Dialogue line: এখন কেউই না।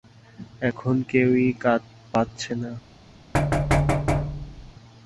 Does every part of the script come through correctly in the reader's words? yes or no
no